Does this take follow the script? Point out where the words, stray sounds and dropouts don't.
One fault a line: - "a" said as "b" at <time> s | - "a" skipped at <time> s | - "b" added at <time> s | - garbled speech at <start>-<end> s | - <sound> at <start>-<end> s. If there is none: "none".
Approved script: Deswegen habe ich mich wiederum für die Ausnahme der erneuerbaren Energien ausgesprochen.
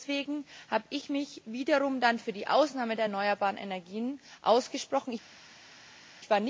none